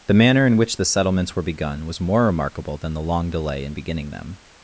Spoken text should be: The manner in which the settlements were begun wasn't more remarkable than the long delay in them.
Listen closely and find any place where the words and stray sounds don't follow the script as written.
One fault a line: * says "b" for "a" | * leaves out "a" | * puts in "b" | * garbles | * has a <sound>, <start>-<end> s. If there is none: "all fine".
* says "was" for "wasn't"
* puts in "beginning"